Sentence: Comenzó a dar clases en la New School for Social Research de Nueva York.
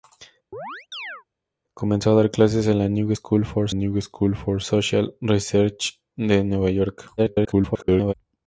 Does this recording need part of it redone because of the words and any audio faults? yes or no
yes